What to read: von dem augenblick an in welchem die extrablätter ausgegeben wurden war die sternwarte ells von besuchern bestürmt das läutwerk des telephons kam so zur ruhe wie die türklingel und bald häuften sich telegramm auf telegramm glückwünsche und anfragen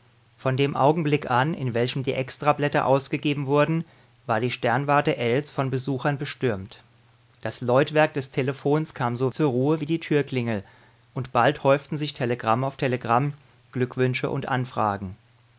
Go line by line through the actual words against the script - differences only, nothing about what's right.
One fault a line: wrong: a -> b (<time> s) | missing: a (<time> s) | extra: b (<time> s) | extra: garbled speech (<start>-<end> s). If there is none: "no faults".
no faults